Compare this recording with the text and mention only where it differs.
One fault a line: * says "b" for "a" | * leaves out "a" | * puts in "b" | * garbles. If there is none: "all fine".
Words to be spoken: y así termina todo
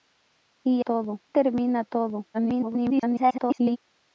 * says "todo" for "así"
* garbles